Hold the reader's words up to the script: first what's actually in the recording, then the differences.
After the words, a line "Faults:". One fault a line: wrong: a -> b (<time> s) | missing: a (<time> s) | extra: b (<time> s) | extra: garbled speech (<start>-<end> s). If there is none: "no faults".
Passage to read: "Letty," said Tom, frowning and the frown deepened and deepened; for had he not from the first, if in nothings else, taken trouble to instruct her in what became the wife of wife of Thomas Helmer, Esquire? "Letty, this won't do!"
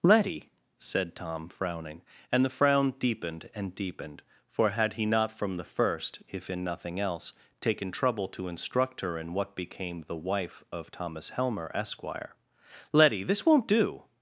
"Letty," said Tom, frowning and the frown deepened and deepened; for had he not from the first, if in nothing else, taken trouble to instruct her in what became the wife of Thomas Helmer, Esquire? "Letty, this won't do!"
Faults:
wrong: nothings -> nothing (6.6 s)
missing: wife of (10.9 s)